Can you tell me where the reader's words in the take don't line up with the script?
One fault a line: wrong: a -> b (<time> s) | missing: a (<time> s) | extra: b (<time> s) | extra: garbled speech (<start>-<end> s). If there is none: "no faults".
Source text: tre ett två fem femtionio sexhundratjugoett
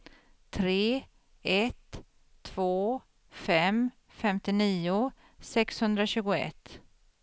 no faults